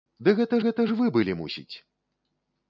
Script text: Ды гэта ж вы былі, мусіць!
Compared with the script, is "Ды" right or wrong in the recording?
right